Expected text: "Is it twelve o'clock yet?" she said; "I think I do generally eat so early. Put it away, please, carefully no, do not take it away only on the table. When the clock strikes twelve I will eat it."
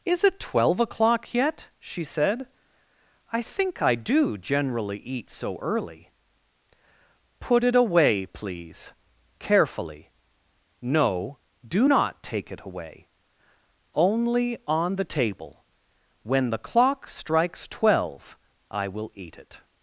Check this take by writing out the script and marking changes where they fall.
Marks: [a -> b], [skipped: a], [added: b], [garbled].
"Is it twelve o'clock yet?" she said; "I think I do generally eat so early. Put it away, please, carefully no, do not take it away only on the table. When the clock strikes twelve I will eat it."